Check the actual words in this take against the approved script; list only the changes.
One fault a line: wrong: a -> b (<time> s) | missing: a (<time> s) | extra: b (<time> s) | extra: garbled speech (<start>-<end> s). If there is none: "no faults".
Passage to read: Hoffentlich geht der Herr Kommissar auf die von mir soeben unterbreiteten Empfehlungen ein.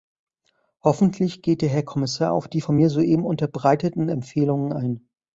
no faults